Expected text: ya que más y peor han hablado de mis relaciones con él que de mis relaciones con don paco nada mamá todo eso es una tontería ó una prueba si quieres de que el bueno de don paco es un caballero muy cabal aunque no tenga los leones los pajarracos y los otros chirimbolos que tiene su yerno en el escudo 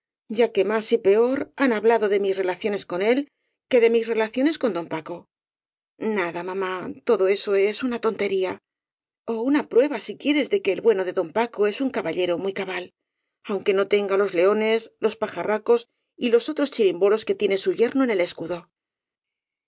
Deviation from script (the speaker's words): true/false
false